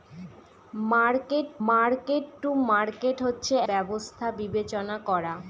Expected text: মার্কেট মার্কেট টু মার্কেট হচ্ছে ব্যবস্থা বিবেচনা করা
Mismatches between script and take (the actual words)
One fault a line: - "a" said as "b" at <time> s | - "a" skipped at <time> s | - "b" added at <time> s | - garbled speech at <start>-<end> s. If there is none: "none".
none